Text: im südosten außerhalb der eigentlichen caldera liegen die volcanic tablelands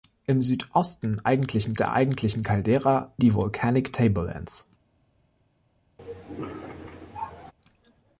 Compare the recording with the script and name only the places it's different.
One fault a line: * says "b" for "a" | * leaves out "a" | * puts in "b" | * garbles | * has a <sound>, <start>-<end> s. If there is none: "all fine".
* says "eigentlichen" for "außerhalb"
* leaves out "liegen"
* has a cough, 6.0-7.5 s